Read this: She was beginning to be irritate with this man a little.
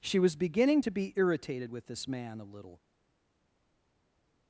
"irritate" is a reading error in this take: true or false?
true